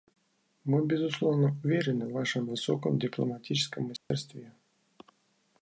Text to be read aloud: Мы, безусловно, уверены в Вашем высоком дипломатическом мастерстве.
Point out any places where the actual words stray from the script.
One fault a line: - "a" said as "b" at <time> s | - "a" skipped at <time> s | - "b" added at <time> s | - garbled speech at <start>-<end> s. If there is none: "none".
none